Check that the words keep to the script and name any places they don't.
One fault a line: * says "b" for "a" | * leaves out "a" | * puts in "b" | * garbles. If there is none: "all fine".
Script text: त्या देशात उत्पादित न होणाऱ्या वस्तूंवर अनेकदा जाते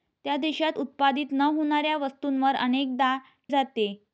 all fine